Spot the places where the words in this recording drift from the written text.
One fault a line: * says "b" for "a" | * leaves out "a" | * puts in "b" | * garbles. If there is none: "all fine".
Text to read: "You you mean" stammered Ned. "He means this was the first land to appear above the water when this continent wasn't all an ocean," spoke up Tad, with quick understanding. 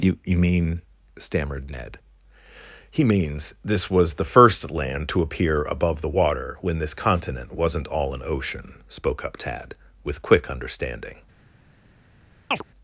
all fine